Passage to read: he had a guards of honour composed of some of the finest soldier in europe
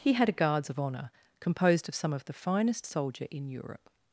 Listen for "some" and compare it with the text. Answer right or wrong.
right